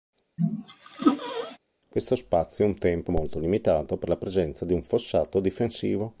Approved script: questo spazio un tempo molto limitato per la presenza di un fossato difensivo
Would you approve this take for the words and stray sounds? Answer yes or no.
no